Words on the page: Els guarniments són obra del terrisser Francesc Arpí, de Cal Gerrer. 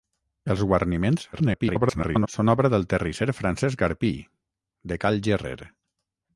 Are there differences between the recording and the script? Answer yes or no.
yes